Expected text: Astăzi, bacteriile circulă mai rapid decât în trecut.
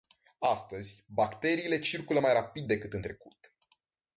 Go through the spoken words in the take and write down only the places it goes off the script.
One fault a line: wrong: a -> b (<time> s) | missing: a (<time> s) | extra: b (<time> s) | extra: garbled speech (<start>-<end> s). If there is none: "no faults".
no faults